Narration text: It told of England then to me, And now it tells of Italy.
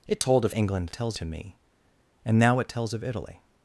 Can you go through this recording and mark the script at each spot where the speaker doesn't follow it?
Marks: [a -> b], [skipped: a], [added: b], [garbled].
It told of England [then -> tells] to me, And now it tells of Italy.